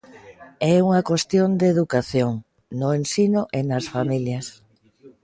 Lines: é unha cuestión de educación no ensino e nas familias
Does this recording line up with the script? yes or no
yes